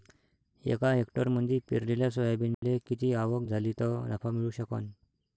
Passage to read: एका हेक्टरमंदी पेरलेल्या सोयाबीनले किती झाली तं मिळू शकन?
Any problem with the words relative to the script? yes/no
yes